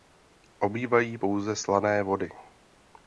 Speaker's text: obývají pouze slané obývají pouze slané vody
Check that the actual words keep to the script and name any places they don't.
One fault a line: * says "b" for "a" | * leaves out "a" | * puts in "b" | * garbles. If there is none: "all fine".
* leaves out "obývají pouze slané"